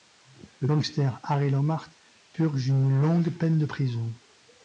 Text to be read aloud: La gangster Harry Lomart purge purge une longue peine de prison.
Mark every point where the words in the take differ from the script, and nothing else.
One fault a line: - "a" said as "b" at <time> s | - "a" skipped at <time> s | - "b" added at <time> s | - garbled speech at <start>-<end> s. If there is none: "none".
- "La" said as "Le" at 0.6 s
- "purge" skipped at 2.7 s